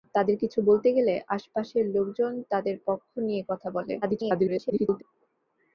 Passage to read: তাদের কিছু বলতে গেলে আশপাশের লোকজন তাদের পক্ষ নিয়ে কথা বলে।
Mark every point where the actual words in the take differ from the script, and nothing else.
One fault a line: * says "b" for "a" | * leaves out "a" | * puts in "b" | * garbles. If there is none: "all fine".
* garbles